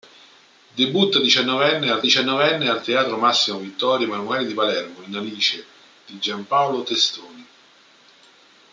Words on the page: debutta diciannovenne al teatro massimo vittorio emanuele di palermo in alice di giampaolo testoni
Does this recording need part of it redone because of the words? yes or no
yes